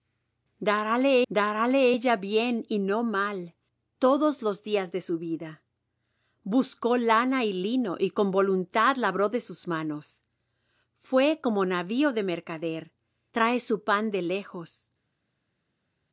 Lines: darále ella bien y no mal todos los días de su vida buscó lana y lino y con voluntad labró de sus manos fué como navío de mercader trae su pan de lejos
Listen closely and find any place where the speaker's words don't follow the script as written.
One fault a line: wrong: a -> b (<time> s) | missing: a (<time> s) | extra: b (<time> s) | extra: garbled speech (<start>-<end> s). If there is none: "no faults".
extra: darále (1.3 s)